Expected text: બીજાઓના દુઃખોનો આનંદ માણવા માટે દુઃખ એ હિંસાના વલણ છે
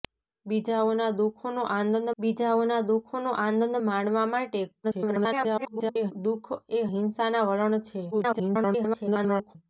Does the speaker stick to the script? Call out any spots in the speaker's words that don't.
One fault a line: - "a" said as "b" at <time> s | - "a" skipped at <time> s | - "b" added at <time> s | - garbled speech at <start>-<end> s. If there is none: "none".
- "બીજાઓના દુઃખોનો આનંદ" added at 2.2 s
- garbled speech at 4.8-6.1 s
- garbled speech at 8.1-9.6 s